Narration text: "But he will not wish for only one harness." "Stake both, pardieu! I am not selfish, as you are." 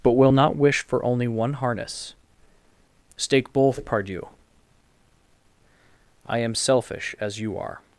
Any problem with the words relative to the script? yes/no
yes